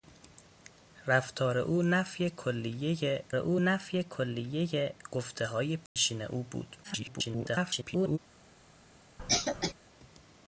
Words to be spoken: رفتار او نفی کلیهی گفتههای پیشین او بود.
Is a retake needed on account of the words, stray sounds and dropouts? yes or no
yes